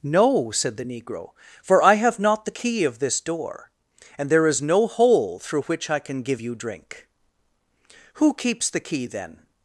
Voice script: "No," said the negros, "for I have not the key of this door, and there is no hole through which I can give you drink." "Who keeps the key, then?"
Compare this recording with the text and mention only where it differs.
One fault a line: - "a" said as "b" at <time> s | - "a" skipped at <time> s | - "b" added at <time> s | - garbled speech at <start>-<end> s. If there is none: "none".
- "negros" said as "negro" at 0.8 s